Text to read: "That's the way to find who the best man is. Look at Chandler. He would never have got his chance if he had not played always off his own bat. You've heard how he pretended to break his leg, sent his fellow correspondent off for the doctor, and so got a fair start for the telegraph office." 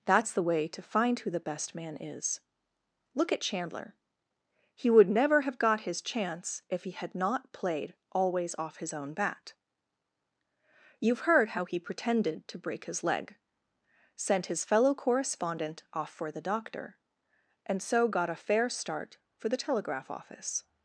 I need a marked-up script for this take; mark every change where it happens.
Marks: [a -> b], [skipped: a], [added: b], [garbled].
"That's the way to find who the best man is. Look at Chandler. He would never have got his chance if he had not played always off his own bat. You've heard how he pretended to break his leg, sent his fellow correspondent off for the doctor, and so got a fair start for the telegraph office."